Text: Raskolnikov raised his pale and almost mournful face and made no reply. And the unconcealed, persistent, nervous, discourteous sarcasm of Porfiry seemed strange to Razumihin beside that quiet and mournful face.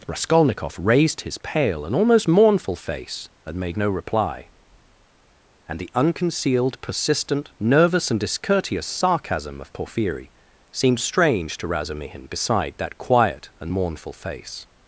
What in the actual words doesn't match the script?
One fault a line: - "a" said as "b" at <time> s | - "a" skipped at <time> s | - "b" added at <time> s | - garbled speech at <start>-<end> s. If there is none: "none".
- "and" added at 8.1 s